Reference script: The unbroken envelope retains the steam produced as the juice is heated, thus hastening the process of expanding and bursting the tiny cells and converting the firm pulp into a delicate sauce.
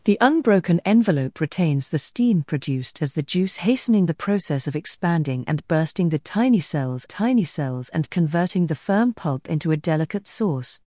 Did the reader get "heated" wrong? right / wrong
wrong